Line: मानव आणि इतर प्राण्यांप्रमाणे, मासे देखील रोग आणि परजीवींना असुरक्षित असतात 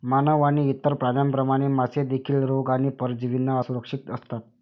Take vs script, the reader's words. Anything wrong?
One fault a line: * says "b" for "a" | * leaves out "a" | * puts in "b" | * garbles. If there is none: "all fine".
all fine